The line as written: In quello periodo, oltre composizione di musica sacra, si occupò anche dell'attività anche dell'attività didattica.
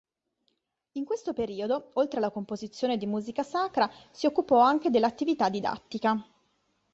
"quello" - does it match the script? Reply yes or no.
no